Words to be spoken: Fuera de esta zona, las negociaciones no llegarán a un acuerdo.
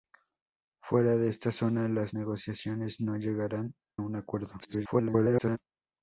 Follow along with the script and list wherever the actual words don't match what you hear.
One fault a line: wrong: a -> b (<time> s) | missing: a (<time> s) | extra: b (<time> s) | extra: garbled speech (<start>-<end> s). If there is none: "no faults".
missing: a (3.7 s)
extra: garbled speech (4.6-5.6 s)